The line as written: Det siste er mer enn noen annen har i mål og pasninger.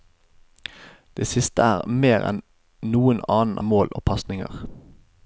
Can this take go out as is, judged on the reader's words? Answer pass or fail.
fail